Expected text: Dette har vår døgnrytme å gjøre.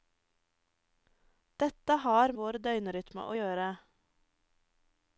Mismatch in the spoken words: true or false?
false